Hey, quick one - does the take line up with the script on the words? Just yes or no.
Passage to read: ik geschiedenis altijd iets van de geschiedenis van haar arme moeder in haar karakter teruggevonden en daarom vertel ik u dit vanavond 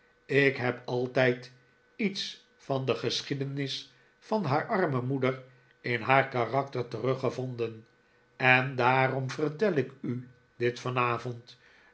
no